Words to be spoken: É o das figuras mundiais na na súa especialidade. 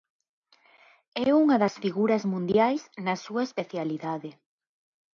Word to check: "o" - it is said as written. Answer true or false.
false